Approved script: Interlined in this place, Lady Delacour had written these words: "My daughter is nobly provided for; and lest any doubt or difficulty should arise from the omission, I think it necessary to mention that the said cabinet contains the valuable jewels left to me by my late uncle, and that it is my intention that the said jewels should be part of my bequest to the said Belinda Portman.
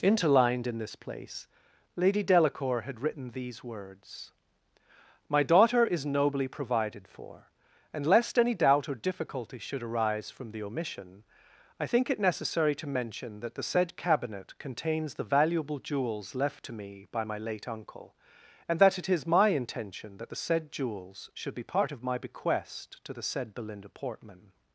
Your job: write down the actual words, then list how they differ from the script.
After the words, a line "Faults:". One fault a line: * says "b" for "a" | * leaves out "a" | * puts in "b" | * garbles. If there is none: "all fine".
Interlined in this place, Lady Delacour had written these words: "My daughter is nobly provided for; and lest any doubt or difficulty should arise from the omission, I think it necessary to mention that the said cabinet contains the valuable jewels left to me by my late uncle, and that it is my intention that the said jewels should be part of my bequest to the said Belinda Portman.
Faults:
all fine